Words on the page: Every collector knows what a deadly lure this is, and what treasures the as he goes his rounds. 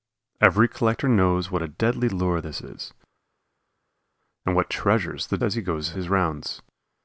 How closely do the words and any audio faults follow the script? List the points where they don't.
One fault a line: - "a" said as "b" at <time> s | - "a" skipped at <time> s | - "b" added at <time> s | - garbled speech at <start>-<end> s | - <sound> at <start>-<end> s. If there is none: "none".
none